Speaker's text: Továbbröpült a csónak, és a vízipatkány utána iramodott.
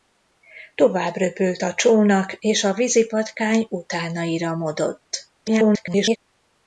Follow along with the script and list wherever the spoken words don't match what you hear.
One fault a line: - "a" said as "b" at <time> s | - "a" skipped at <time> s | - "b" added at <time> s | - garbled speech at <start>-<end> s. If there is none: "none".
- garbled speech at 5.4-6.2 s